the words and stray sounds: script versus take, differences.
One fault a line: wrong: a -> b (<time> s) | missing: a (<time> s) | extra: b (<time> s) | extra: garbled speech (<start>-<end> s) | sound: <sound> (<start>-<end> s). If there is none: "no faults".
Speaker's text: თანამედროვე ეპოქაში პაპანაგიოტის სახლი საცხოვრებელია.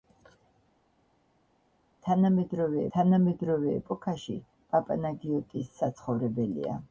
extra: თანამედროვე (3.0 s)
missing: სახლი (5.8 s)